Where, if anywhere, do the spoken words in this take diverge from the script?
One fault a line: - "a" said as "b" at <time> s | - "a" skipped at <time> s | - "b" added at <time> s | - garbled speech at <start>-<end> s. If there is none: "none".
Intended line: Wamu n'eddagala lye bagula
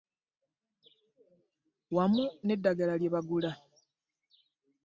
none